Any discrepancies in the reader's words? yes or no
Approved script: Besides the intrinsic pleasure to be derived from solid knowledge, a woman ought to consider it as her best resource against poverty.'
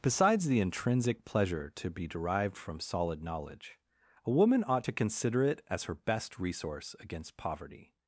no